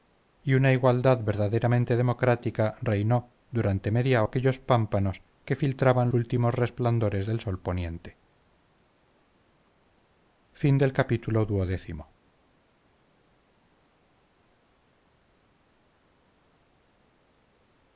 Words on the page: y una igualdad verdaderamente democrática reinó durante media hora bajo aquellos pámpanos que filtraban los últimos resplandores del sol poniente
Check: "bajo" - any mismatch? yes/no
yes